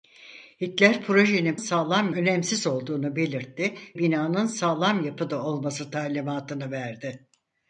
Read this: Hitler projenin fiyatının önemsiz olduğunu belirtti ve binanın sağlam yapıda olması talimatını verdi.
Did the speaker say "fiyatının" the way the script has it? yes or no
no